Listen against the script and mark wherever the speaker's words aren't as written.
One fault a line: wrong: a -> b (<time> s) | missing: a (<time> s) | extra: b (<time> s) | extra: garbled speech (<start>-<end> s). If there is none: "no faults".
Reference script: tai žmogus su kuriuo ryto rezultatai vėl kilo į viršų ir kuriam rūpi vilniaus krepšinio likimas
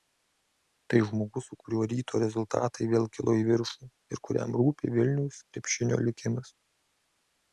no faults